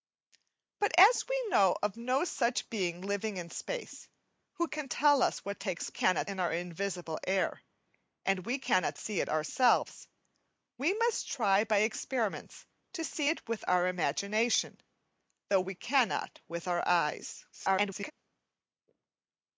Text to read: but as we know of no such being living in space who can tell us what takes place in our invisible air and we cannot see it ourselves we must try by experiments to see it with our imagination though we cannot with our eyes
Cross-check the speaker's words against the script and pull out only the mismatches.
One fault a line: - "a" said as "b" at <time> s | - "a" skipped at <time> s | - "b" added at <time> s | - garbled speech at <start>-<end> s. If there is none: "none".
- "place" said as "cannot" at 5.9 s
- garbled speech at 17.5-18.1 s